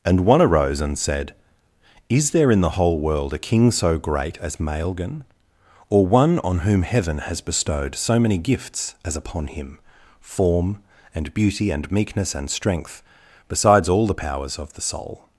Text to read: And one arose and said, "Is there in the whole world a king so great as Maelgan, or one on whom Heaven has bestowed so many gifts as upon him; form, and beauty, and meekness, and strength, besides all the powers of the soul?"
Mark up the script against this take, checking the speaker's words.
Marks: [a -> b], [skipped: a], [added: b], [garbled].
And one arose and said, "Is there in the whole world a king so great as Maelgan, or one on whom Heaven has bestowed so many gifts as upon him; form, and beauty, and meekness, and strength, besides all the powers of the soul?"